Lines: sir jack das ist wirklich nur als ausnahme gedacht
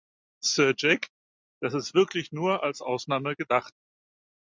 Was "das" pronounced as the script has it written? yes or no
yes